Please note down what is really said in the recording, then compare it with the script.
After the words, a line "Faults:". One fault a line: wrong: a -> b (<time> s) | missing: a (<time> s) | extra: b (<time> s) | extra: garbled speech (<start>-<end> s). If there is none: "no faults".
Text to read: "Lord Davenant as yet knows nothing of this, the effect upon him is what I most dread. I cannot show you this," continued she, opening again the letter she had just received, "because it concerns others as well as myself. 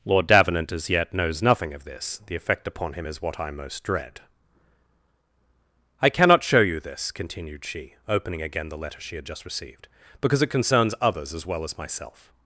"Lord Davenant as yet knows nothing of this, the effect upon him is what I most dread. I cannot show you this," continued she, opening again the letter she had just received, "because it concerns others as well as myself.
Faults:
no faults